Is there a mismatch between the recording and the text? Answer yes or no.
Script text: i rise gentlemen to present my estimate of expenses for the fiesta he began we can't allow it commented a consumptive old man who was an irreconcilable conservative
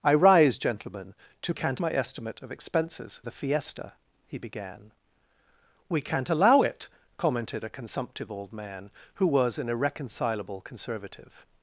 yes